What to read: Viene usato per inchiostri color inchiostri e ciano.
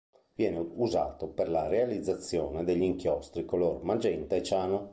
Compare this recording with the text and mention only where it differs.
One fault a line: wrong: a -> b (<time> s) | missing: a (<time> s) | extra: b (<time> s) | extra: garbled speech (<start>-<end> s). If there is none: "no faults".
extra: la realizzazione degli (1.5 s)
wrong: inchiostri -> magenta (3.8 s)